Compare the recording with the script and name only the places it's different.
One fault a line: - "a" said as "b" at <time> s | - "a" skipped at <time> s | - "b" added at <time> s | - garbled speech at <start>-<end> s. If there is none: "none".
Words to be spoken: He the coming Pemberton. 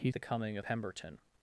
none